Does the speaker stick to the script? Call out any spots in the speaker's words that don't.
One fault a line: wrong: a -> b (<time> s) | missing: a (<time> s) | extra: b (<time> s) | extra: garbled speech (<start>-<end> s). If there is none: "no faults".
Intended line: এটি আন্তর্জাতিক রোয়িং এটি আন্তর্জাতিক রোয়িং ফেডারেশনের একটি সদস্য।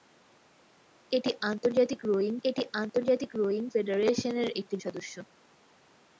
no faults